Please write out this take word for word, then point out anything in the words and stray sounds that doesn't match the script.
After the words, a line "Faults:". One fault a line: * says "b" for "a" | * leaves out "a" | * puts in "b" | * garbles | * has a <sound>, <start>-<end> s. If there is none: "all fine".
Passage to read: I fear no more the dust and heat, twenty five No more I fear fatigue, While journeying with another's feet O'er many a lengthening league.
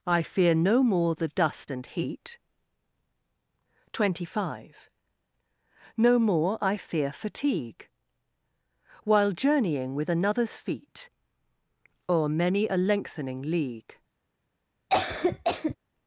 I fear no more the dust and heat, twenty five No more I fear fatigue, While journeying with another's feet O'er many a lengthening league.
Faults:
* has a cough, 14.9-15.8 s